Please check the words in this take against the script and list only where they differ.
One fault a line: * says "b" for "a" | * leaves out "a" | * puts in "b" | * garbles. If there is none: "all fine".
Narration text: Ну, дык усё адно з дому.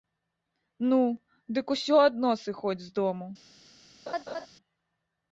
* puts in "сыходзь"